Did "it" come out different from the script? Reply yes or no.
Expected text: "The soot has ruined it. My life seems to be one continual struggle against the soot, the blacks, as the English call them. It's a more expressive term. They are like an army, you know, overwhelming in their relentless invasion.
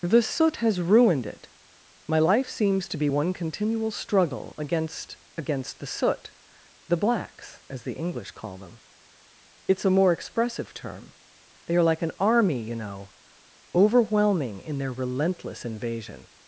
no